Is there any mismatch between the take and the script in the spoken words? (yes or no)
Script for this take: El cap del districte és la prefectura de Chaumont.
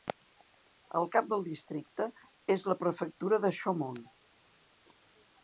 no